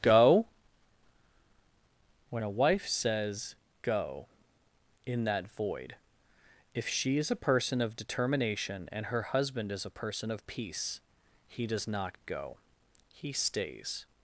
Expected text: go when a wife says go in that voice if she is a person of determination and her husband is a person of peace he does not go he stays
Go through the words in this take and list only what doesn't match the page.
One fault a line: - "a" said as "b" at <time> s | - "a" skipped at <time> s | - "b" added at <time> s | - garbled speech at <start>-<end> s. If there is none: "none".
- "voice" said as "void" at 5.6 s